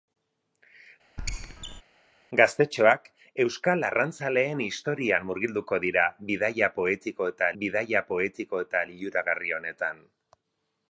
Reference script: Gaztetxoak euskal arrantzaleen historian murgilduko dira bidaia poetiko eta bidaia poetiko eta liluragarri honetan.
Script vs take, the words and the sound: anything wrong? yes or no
yes